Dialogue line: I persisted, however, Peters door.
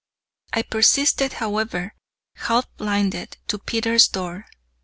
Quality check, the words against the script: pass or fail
fail